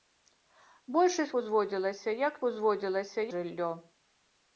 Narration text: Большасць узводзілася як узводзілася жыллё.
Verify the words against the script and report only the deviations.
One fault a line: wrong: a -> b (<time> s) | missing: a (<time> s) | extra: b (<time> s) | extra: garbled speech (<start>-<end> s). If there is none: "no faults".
no faults